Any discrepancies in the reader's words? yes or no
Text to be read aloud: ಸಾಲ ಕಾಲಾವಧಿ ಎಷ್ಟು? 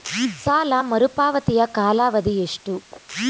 yes